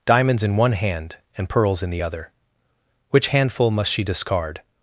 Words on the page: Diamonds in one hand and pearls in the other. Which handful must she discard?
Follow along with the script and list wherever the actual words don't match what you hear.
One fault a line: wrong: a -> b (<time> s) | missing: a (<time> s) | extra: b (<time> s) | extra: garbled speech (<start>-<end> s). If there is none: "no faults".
no faults